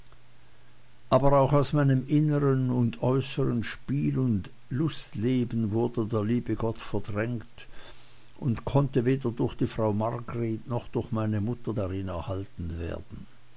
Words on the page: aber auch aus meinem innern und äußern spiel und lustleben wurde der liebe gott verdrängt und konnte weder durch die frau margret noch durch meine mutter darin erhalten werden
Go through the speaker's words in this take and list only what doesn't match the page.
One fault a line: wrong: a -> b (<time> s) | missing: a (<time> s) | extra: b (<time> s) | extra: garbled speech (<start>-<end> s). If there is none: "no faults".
no faults